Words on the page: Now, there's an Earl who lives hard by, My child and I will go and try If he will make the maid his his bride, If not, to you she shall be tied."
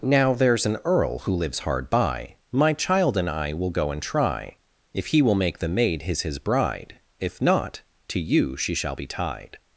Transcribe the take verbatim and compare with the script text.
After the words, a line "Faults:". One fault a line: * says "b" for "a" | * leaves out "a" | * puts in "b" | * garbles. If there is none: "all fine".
Now, there's an Earl who lives hard by, My child and I will go and try If he will make the maid his his bride, If not, to you she shall be tied."
Faults:
all fine